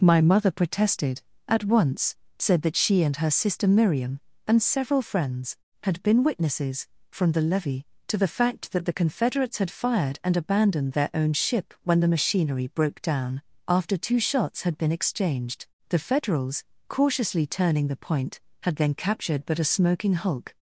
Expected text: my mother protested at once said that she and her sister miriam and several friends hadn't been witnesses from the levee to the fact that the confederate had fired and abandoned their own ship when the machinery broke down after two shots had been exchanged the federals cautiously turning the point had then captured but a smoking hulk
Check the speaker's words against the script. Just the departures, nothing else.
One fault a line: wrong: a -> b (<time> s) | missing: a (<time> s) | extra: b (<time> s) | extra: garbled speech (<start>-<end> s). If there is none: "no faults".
wrong: hadn't -> had (5.8 s)
wrong: confederate -> confederates (9.0 s)